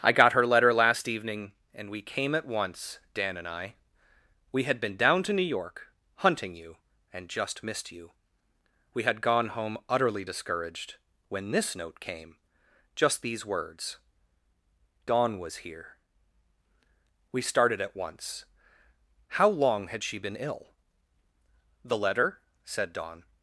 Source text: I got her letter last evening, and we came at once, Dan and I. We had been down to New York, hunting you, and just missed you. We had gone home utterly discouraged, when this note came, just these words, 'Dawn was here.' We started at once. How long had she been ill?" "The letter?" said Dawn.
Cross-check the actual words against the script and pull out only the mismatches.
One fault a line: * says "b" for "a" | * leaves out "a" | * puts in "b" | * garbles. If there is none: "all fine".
all fine